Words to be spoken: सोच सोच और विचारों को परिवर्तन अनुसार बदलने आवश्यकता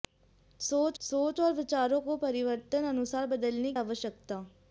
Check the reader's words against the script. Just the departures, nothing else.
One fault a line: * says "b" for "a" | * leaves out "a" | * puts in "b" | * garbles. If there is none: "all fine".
all fine